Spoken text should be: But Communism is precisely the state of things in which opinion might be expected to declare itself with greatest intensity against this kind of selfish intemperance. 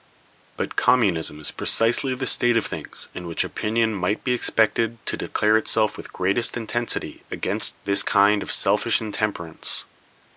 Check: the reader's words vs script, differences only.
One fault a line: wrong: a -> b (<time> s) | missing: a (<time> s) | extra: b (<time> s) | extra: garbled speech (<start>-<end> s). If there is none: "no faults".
no faults